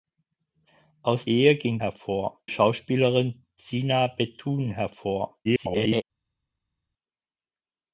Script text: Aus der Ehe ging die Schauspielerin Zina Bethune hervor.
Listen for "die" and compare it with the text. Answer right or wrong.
wrong